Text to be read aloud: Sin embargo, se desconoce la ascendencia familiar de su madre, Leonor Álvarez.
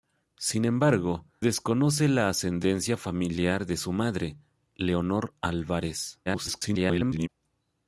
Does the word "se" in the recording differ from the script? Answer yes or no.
yes